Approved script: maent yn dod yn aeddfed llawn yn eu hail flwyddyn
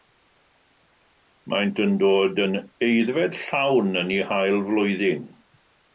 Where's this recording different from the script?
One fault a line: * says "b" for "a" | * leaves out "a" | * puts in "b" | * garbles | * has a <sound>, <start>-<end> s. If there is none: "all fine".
all fine